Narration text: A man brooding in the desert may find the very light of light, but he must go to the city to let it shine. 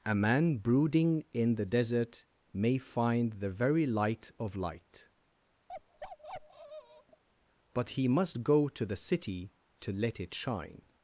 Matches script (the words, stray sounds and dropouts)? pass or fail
fail